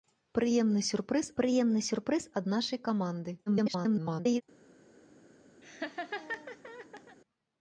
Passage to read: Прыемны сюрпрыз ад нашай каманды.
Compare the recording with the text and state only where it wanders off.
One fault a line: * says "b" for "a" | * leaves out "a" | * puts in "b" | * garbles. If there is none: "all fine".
* puts in "прыемны сюрпрыз"
* garbles